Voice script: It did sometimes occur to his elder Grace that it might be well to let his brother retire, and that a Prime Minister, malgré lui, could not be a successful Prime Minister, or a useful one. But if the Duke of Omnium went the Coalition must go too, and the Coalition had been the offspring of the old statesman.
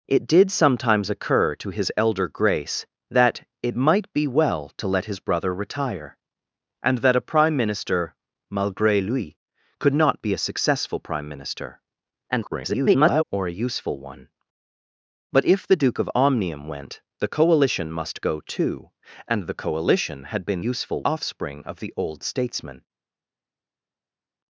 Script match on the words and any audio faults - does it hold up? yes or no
no